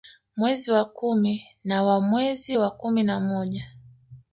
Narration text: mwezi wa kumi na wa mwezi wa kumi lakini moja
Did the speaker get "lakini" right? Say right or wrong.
wrong